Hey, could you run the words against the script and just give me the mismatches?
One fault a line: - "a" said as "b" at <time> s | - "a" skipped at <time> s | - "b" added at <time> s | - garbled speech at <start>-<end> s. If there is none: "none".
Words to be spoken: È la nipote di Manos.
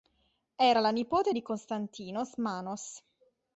- "È" said as "Era" at 0.7 s
- "Konstantinos" added at 1.4 s